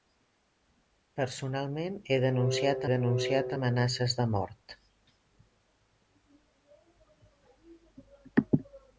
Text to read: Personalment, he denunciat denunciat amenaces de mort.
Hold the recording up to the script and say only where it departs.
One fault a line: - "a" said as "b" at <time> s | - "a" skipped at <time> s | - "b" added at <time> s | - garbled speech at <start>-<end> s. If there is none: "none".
none